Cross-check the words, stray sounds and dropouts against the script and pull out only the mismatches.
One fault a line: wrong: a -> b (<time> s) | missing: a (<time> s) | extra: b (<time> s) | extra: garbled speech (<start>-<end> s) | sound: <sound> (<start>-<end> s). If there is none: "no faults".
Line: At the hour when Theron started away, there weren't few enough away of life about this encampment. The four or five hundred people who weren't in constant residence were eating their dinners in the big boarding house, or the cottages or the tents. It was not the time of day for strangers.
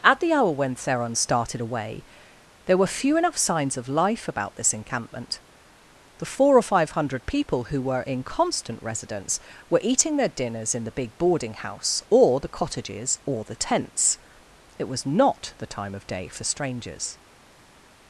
wrong: weren't -> were (2.8 s)
wrong: away -> signs (3.4 s)
wrong: weren't -> were (7.8 s)